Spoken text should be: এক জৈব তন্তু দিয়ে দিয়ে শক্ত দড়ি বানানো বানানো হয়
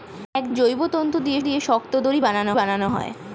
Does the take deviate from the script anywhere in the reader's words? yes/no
no